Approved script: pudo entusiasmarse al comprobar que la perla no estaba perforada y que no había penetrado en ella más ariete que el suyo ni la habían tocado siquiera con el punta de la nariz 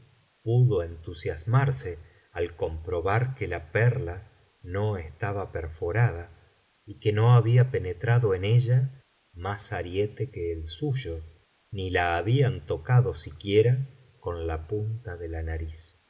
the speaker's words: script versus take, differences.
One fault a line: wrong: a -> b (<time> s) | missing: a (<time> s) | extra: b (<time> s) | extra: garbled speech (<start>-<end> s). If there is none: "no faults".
wrong: el -> la (14.5 s)